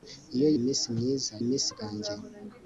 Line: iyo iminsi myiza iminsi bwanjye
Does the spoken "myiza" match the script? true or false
true